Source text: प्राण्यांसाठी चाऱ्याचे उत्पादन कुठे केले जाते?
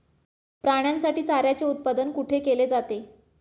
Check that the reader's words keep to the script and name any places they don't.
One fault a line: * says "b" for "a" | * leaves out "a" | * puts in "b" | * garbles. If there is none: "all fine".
all fine